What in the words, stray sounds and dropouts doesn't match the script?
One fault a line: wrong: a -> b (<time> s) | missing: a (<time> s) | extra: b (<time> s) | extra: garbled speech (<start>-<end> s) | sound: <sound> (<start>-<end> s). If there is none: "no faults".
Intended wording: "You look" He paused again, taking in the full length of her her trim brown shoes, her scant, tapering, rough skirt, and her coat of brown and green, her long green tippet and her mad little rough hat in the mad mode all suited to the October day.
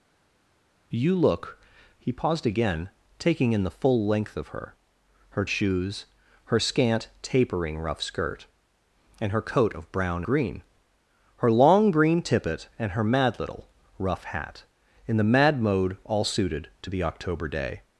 missing: trim brown (5.5 s)
missing: and (10.2 s)